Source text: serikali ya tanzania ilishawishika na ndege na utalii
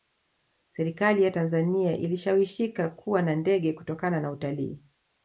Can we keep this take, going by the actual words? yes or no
no